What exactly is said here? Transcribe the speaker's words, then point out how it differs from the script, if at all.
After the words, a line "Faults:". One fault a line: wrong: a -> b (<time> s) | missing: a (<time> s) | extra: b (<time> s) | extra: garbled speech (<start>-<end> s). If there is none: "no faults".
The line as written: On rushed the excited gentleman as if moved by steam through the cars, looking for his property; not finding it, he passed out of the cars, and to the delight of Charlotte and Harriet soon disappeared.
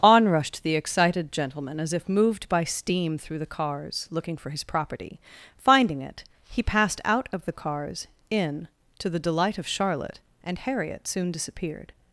On rushed the excited gentleman as if moved by steam through the cars, looking for his property; finding it, he passed out of the cars, in to the delight of Charlotte and Harriet soon disappeared.
Faults:
missing: not (5.2 s)
wrong: and -> in (8.3 s)